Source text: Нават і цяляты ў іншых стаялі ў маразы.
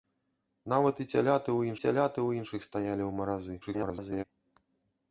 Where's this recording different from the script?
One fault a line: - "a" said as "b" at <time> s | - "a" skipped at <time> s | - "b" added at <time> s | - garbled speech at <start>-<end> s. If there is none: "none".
- "цяляты ў" added at 1.8 s
- garbled speech at 3.6-4.2 s